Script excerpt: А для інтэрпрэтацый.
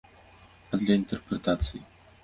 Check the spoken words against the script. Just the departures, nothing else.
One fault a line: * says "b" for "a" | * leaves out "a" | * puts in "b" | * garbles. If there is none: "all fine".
all fine